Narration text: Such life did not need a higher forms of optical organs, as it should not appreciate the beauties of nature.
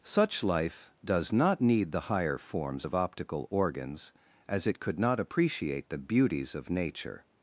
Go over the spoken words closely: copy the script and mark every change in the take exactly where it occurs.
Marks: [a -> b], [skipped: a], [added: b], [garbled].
Such life [did -> does] not need [a -> the] higher forms of optical organs, as it [should -> could] not appreciate the beauties of nature.